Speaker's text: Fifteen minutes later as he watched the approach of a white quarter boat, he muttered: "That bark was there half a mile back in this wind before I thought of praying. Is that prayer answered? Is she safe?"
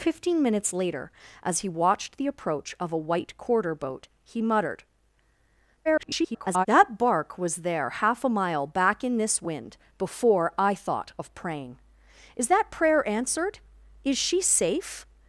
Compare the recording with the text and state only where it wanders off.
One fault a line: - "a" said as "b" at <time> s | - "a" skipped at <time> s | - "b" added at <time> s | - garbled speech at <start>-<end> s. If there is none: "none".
- garbled speech at 5.8-6.7 s